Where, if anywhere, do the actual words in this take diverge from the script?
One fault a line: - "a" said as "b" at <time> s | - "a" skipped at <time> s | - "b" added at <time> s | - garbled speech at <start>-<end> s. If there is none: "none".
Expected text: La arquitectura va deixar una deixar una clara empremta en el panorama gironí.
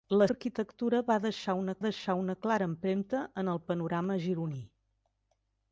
none